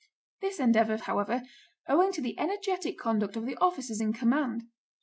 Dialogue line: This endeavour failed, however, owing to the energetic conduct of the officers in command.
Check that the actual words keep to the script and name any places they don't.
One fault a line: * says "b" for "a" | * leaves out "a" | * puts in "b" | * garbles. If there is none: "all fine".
* leaves out "failed"